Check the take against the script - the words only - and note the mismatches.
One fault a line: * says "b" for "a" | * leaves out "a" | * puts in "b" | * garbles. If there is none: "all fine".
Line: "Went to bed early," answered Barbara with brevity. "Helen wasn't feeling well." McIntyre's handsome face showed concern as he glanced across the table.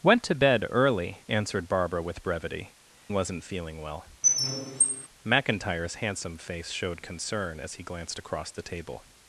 * leaves out "Helen"